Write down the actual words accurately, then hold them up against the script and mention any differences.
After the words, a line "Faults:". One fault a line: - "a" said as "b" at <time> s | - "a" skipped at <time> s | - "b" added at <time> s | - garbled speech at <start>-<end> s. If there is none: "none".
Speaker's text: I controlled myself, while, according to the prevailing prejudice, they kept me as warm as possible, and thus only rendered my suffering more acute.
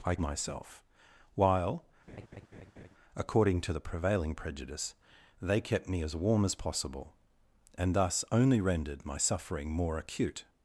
I myself, while, according to the prevailing prejudice, they kept me as warm as possible, and thus only rendered my suffering more acute.
Faults:
- "controlled" skipped at 0.1 s